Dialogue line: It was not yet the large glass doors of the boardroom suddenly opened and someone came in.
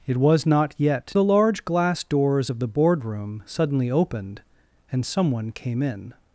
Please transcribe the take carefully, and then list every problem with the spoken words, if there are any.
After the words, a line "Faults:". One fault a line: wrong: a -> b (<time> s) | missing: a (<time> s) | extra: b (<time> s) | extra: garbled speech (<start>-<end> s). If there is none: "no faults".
It was not yet the large glass doors of the boardroom suddenly opened and someone came in.
Faults:
no faults